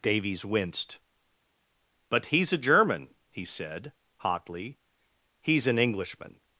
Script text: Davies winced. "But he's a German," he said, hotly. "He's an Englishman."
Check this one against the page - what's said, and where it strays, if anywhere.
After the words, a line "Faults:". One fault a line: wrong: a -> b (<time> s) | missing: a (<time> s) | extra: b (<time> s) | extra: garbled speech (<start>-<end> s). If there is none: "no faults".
Davies winced. "But he's a German," he said, hotly. "He's an Englishman."
Faults:
no faults